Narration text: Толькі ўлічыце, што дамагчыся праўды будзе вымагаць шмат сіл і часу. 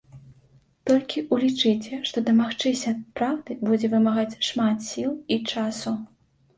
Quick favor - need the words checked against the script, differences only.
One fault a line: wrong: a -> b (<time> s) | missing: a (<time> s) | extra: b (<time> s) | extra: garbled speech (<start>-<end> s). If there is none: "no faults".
no faults